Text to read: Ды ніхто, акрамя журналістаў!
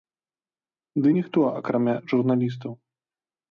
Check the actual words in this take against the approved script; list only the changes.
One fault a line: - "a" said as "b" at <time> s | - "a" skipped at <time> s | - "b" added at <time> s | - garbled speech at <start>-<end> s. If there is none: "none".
none